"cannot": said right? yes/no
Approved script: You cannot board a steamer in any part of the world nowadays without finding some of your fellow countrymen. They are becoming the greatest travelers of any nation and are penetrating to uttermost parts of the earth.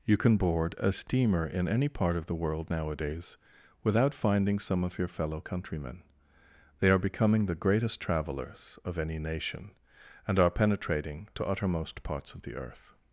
no